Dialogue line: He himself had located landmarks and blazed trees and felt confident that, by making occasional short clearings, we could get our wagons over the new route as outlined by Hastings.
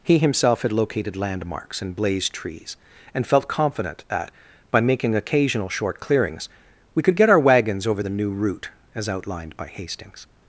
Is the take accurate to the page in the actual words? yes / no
yes